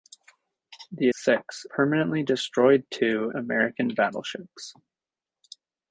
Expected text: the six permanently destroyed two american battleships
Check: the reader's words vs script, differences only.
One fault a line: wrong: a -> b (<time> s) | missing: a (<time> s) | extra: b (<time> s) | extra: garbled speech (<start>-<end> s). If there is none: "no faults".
no faults